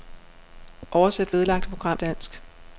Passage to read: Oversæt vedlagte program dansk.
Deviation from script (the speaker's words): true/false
false